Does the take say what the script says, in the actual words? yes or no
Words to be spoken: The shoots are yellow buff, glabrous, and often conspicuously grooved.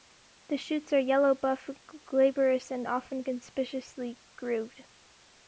yes